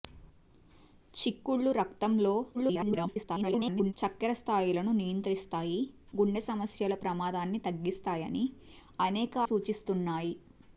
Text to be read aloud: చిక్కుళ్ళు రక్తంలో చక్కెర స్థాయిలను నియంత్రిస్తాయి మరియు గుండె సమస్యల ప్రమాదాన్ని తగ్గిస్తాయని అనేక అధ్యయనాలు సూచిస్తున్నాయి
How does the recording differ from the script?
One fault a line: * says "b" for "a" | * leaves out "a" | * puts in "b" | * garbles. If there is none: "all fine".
* garbles
* leaves out "మరియు"
* leaves out "అధ్యయనాలు"